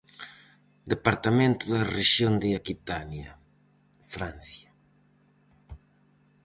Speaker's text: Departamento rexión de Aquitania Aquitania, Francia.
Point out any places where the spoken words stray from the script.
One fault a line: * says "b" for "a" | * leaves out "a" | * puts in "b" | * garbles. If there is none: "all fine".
* puts in "da"
* leaves out "Aquitania"